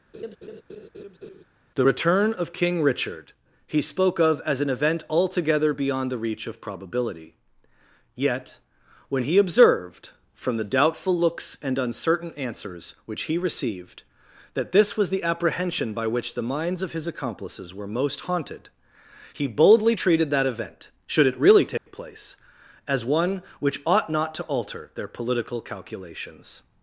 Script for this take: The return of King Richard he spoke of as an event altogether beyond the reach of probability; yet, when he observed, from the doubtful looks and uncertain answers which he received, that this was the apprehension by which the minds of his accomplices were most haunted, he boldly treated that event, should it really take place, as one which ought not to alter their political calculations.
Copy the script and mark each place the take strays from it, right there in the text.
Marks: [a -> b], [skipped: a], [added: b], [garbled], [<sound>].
[laugh] The return of King Richard he spoke of as an event altogether beyond the reach of probability; yet, when he observed, from the doubtful looks and uncertain answers which he received, that this was the apprehension by which the minds of his accomplices were most haunted, he boldly treated that event, should it really take [dropout] place, as one which ought not to alter their political calculations.